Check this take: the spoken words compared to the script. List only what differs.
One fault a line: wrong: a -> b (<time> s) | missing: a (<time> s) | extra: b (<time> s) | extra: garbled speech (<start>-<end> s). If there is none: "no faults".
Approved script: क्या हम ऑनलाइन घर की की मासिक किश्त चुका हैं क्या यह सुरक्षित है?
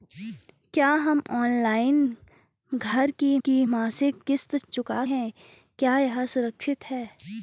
no faults